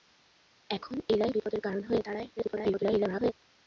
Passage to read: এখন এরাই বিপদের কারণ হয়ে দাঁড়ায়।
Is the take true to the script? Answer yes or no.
no